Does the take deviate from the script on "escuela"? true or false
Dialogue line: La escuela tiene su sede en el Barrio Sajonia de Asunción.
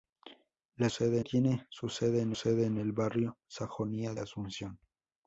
true